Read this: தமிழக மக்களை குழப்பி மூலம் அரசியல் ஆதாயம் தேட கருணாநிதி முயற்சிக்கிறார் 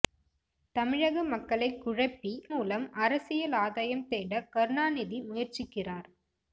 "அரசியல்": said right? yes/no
yes